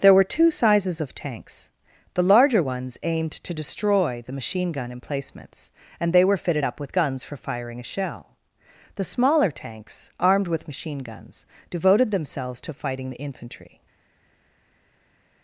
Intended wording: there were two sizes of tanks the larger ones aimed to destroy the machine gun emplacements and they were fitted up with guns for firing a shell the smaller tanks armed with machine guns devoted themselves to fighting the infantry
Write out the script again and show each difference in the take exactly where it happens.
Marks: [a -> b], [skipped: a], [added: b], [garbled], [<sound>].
there were two sizes of tanks the larger ones aimed to destroy the machine gun emplacements and they were fitted up with guns for firing a shell the smaller tanks armed with machine guns devoted themselves to fighting the infantry